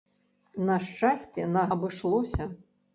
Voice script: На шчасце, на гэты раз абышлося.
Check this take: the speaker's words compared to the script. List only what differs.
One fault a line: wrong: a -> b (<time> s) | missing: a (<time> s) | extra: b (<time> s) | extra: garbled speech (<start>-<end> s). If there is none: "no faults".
missing: гэты раз (1.7 s)